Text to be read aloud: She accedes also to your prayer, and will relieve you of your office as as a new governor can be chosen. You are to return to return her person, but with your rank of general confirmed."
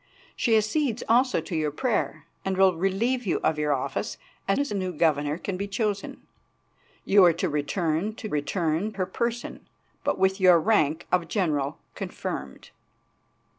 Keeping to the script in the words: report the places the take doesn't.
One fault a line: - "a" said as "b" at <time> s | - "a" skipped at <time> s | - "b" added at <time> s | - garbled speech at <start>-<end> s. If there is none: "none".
none